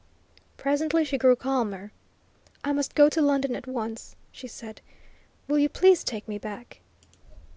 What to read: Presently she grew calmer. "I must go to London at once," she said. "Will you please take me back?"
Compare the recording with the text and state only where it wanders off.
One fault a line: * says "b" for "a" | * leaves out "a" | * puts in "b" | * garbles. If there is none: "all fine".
all fine